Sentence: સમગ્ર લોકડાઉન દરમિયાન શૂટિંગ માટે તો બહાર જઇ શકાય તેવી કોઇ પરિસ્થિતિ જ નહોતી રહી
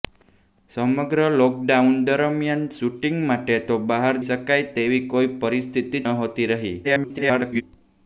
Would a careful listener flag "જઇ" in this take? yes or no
yes